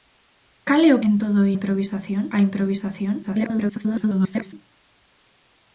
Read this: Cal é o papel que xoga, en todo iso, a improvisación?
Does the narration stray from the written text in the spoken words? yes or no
yes